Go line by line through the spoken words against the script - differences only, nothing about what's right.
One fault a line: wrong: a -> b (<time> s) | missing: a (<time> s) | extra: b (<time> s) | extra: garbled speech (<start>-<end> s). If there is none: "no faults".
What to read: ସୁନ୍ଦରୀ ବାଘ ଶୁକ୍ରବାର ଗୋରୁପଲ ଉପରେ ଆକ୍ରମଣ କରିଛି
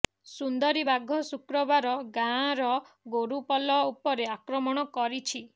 extra: ଗାଁର (2.1 s)